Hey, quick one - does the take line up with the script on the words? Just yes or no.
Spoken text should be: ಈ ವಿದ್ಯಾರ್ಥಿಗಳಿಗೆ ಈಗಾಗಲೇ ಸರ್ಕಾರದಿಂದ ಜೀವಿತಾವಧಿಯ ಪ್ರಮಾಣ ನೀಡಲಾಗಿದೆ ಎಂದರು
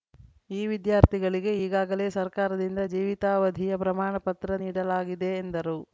no